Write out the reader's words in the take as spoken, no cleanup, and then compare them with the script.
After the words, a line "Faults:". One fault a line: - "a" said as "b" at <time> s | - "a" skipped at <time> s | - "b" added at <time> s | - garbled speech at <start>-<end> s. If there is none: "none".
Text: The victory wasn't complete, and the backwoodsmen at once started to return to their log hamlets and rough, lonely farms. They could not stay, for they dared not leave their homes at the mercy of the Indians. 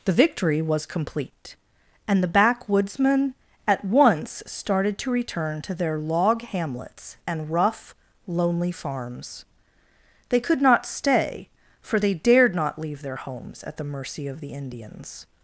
The victory was complete, and the backwoodsmen at once started to return to their log hamlets and rough, lonely farms. They could not stay, for they dared not leave their homes at the mercy of the Indians.
Faults:
- "wasn't" said as "was" at 0.6 s